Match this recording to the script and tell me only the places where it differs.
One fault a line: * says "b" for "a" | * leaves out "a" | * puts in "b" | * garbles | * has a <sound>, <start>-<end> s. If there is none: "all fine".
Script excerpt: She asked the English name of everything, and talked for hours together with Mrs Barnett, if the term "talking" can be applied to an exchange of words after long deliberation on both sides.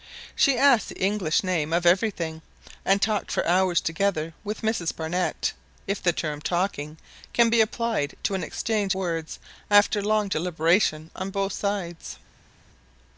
* leaves out "of"